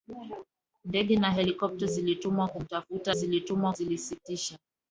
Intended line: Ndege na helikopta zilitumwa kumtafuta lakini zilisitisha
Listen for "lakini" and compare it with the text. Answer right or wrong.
wrong